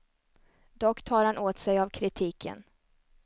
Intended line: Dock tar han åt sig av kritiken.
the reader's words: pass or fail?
pass